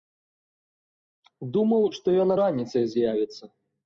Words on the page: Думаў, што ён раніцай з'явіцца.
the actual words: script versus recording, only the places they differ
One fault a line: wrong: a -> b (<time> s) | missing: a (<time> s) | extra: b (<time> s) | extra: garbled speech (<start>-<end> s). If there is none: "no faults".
no faults